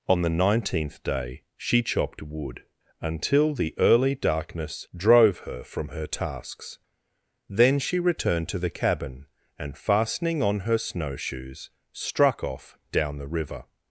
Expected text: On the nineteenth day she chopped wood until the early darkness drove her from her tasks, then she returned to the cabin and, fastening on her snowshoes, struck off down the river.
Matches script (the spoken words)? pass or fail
pass